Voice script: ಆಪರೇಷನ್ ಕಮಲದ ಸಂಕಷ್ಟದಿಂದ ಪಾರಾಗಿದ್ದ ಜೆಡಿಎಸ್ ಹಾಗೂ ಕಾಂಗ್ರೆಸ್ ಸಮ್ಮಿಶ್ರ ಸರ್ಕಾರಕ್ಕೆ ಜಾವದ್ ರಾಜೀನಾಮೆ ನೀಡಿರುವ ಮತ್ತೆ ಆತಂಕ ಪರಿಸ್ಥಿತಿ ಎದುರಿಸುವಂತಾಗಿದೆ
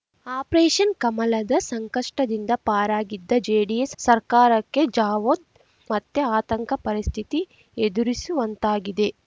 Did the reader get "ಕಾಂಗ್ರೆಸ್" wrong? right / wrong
wrong